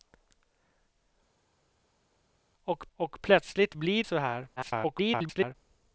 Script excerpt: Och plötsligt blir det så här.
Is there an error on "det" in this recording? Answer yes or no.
yes